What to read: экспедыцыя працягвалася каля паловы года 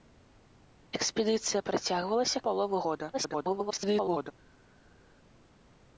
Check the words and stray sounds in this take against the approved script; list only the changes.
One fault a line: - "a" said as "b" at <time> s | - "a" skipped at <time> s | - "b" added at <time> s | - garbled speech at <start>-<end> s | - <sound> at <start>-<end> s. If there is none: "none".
- "каля" skipped at 2.4 s
- garbled speech at 3.1-4.3 s